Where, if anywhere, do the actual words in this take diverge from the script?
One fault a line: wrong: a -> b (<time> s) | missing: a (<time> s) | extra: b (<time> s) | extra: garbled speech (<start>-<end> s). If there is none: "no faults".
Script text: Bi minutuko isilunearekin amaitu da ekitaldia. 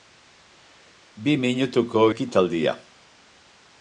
missing: isilunearekin amaitu da (2.0 s)